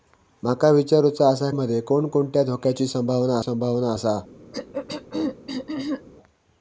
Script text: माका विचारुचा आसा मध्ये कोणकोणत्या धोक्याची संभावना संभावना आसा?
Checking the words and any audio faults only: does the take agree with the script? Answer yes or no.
no